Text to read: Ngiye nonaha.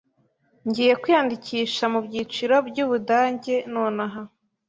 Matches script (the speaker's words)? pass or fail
fail